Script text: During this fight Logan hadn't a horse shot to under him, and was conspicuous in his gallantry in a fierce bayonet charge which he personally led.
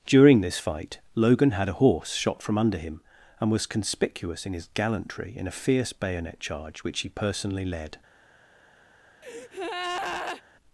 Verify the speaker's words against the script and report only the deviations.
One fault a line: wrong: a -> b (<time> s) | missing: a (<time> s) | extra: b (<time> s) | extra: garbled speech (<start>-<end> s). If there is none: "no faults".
wrong: hadn't -> had (1.5 s)
wrong: to -> from (2.4 s)